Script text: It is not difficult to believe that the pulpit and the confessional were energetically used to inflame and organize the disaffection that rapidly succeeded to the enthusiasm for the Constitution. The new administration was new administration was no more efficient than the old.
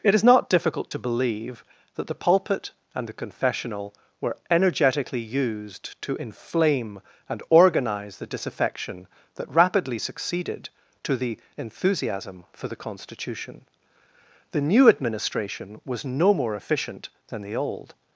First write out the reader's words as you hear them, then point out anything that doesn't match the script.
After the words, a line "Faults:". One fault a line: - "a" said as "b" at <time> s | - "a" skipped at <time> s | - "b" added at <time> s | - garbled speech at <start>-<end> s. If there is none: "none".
It is not difficult to believe that the pulpit and the confessional were energetically used to inflame and organize the disaffection that rapidly succeeded to the enthusiasm for the Constitution. The new administration was no more efficient than the old.
Faults:
- "new administration was" skipped at 16.0 s